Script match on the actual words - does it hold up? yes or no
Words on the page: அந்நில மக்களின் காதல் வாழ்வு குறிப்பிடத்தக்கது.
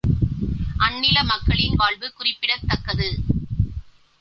no